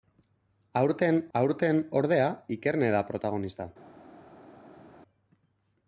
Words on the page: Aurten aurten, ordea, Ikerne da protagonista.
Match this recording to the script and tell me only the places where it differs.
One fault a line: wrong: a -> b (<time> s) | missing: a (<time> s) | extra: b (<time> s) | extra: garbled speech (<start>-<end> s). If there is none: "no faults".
no faults